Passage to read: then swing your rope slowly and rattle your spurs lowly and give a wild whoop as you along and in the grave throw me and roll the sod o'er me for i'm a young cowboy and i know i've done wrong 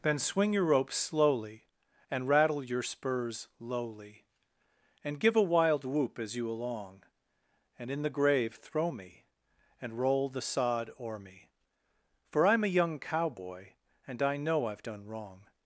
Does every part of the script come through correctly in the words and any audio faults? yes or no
yes